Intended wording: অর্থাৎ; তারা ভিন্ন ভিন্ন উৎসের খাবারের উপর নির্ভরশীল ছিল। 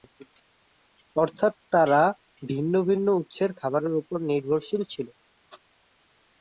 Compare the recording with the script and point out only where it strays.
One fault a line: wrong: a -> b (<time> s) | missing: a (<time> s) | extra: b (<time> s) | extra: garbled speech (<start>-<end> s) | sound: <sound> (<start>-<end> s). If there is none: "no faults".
no faults